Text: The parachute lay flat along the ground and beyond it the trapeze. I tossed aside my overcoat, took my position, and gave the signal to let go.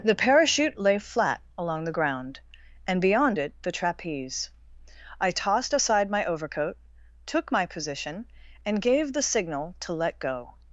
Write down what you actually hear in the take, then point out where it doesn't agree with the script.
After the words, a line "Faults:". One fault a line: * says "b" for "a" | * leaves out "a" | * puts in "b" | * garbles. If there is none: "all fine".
The parachute lay flat along the ground and beyond it the trapeze. I tossed aside my overcoat, took my position, and gave the signal to let go.
Faults:
all fine